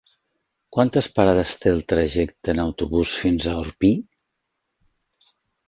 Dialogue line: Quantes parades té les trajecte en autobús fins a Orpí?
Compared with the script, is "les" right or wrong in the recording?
wrong